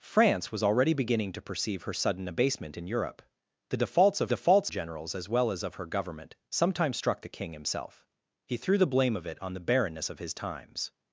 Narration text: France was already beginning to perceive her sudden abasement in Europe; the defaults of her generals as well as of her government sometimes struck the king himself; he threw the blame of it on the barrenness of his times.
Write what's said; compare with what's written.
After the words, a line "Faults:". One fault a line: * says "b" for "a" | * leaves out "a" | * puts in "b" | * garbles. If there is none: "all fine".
France was already beginning to perceive her sudden abasement in Europe; the defaults of defaults generals as well as of her government sometimes struck the king himself; he threw the blame of it on the barrenness of his times.
Faults:
* says "defaults" for "her"